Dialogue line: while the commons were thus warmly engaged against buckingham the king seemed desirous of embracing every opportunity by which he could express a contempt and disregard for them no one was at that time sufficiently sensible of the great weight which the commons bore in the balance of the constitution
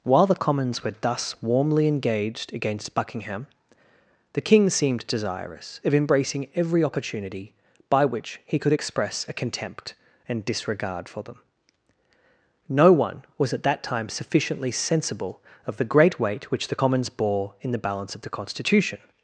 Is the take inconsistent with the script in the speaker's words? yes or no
no